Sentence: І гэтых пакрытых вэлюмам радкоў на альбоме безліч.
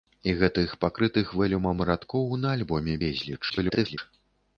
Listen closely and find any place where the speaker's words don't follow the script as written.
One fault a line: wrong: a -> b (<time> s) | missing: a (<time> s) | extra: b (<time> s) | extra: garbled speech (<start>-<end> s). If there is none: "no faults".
extra: garbled speech (3.5-4.0 s)